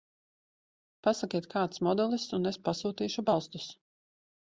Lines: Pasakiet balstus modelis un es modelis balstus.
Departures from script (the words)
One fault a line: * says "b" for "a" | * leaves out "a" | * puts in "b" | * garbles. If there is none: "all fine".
* says "kāds" for "balstus"
* says "pasūtīšu" for "modelis"